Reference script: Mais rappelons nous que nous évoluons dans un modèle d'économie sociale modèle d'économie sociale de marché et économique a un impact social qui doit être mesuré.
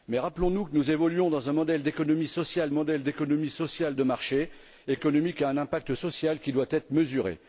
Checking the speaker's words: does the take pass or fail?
pass